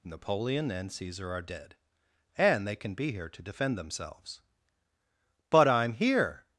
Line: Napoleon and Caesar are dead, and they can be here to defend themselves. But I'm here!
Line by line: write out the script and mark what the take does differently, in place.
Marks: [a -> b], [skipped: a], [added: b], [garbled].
Napoleon and Caesar are dead, and they can be here to defend themselves. But I'm here!